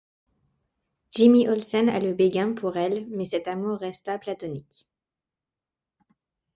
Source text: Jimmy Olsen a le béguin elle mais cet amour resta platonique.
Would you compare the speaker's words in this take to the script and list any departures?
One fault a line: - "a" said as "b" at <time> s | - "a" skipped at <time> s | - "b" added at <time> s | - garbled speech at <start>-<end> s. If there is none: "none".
- "pour" added at 2.5 s